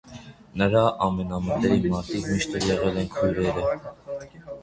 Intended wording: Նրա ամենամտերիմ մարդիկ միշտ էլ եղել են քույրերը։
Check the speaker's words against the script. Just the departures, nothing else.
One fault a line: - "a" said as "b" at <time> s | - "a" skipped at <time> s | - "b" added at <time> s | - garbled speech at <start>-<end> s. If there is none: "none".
none